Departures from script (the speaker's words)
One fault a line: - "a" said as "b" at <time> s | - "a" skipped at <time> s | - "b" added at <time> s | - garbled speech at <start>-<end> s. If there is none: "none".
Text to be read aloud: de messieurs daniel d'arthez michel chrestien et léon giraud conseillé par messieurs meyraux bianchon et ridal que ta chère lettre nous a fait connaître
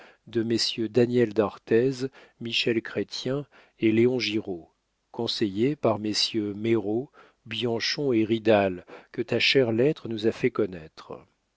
none